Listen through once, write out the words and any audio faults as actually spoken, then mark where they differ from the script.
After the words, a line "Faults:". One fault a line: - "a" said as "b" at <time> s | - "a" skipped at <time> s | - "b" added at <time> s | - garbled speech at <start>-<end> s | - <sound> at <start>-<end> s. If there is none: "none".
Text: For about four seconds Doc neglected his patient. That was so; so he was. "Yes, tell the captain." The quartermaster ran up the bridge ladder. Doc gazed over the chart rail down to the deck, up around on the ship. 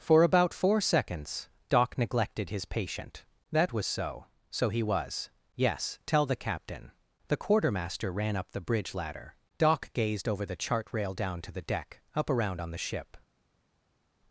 For about four seconds Doc neglected his patient. That was so; so he was. "Yes, tell the captain." The quartermaster ran up the bridge ladder. Doc gazed over the chart rail down to the deck, up around on the ship.
Faults:
none